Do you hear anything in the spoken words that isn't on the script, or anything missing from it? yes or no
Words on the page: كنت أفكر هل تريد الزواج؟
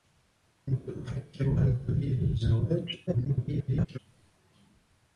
yes